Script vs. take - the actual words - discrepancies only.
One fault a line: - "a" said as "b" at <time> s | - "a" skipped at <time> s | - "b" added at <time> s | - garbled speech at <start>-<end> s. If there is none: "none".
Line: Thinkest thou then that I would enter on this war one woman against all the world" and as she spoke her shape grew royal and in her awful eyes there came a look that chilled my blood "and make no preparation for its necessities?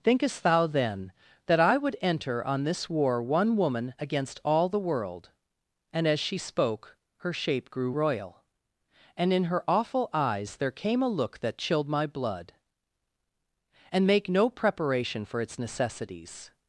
none